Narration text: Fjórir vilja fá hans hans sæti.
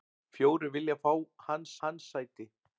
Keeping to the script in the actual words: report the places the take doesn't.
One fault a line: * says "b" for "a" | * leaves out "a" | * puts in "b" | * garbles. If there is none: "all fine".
all fine